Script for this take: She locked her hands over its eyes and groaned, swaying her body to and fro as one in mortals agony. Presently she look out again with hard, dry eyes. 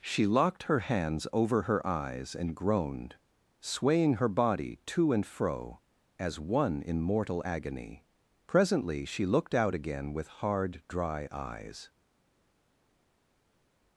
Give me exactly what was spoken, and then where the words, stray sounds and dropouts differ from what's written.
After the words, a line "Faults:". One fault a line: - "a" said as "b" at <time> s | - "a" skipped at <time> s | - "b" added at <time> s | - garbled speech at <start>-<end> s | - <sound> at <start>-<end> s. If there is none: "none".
She locked her hands over her eyes and groaned, swaying her body to and fro as one in mortal agony. Presently she looked out again with hard, dry eyes.
Faults:
- "its" said as "her" at 1.6 s
- "mortals" said as "mortal" at 7.0 s
- "look" said as "looked" at 9.3 s